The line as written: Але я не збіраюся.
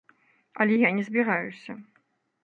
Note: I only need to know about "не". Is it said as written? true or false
true